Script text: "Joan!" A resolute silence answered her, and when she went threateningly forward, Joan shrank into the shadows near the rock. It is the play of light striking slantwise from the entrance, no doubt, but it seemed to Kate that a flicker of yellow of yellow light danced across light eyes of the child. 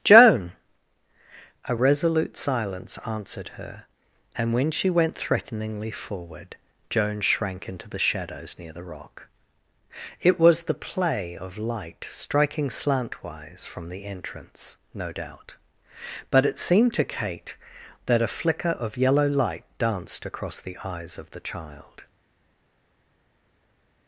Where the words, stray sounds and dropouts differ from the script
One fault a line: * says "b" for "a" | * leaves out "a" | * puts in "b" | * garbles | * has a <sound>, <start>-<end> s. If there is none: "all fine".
* says "was" for "is"
* leaves out "of yellow"
* says "the" for "light"